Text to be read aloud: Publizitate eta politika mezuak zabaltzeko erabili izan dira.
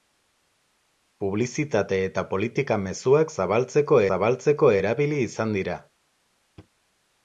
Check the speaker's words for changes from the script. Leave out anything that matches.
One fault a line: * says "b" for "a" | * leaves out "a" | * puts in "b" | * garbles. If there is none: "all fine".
* puts in "zabaltzeko"